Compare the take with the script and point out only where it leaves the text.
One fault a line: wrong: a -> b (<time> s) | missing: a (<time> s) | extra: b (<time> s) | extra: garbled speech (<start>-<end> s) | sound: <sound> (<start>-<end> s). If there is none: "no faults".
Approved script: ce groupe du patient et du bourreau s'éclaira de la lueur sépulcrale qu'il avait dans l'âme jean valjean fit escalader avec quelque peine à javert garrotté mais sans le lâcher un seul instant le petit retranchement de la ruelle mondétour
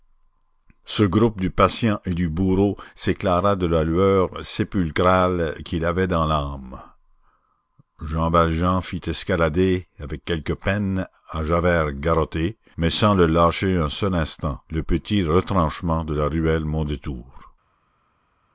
no faults